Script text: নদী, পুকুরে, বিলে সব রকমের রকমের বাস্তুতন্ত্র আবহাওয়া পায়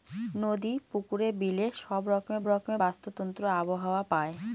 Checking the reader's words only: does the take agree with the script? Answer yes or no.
yes